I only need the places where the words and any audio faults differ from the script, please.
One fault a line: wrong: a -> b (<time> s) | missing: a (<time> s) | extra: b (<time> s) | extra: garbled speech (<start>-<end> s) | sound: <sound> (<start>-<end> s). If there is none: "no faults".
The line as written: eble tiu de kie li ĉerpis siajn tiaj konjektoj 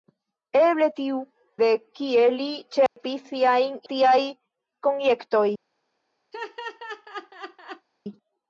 sound: dropout (2.9-3.0 s)
sound: laugh (6.3-7.9 s)